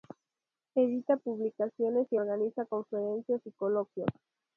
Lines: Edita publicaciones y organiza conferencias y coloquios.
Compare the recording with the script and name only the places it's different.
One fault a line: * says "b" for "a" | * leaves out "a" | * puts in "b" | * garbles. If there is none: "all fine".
all fine